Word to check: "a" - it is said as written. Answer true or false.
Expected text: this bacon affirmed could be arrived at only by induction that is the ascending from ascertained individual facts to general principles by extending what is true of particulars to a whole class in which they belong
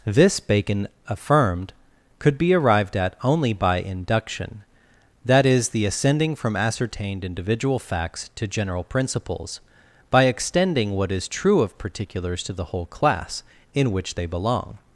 false